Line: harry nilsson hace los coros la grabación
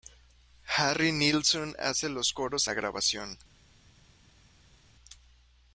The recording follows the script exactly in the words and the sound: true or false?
true